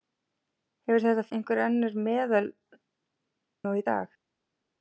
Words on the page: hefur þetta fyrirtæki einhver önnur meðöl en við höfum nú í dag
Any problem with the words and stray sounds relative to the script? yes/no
yes